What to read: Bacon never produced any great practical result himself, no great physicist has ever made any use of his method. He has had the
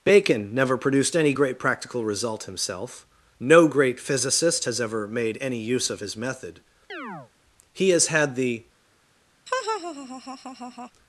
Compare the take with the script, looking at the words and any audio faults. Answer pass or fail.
fail